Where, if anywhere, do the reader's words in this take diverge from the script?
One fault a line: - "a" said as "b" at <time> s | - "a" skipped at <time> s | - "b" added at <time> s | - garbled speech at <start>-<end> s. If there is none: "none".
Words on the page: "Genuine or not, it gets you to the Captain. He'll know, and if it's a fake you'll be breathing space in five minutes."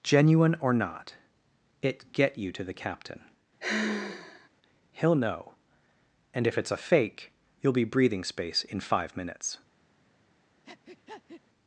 - "gets" said as "get" at 2.1 s